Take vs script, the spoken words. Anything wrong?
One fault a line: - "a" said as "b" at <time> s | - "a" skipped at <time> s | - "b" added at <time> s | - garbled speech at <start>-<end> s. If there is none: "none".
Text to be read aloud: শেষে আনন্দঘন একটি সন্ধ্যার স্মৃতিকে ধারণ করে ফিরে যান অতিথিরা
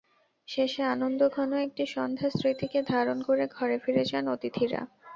- "ঘরে" added at 3.6 s